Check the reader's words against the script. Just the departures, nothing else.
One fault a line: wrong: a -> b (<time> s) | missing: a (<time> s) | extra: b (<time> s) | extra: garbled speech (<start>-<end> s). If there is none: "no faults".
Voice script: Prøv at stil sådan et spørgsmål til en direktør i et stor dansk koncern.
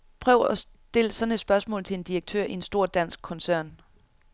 wrong: et -> en (2.5 s)